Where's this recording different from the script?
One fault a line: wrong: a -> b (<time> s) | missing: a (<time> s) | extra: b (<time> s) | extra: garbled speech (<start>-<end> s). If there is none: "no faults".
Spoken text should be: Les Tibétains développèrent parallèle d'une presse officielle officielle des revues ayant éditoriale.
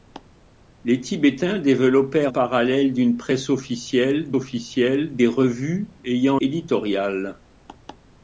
no faults